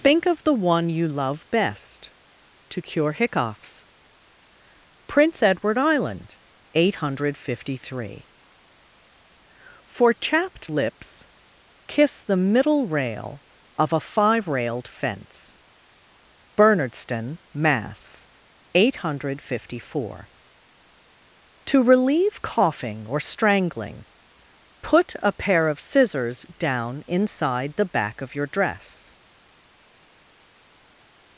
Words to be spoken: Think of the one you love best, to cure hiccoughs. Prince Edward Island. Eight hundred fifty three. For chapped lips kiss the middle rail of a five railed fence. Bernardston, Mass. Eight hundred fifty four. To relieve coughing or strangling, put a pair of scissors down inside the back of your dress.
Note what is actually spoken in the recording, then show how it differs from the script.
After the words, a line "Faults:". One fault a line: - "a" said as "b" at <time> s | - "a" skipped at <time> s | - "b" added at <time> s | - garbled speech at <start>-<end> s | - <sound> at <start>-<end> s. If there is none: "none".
Think of the one you love best, to cure hiccoughs. Prince Edward Island. Eight hundred fifty three. For chapped lips kiss the middle rail of a five railed fence. Bernardston, Mass. Eight hundred fifty four. To relieve coughing or strangling, put a pair of scissors down inside the back of your dress.
Faults:
none